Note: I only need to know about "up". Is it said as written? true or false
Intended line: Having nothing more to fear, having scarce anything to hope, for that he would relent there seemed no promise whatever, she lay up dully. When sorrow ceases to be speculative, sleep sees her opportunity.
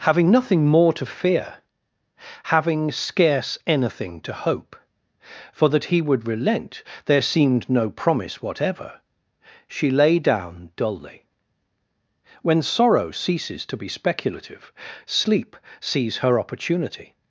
false